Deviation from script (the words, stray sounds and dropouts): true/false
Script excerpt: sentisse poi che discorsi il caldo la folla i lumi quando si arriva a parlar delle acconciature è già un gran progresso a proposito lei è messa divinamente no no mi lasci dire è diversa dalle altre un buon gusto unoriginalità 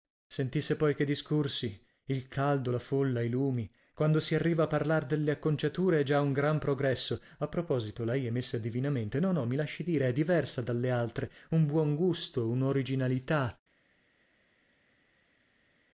false